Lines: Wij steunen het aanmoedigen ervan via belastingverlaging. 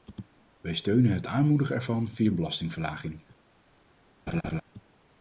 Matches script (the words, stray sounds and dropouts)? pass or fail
fail